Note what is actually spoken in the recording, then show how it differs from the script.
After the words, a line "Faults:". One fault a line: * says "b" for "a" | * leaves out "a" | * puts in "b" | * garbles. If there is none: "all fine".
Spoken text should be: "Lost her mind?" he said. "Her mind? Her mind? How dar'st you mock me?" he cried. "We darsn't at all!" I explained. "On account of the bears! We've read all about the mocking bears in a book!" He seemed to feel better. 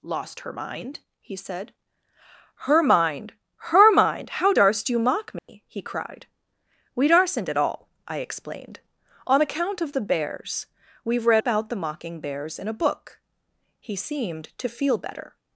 "Lost her mind?" he said. "Her mind? Her mind? How dar'st you mock me?" he cried. "We darsn't at all!" I explained. "On account of the bears! We've read about the mocking bears in a book!" He seemed to feel better.
Faults:
* leaves out "all"